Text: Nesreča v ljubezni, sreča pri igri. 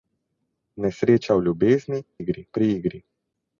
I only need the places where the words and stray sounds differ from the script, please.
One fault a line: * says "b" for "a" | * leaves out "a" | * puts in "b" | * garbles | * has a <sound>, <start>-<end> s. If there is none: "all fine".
* says "igri" for "sreča"